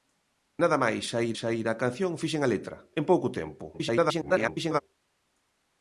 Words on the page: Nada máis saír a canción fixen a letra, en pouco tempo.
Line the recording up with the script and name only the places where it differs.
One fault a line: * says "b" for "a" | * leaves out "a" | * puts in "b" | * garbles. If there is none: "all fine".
* puts in "saír"
* garbles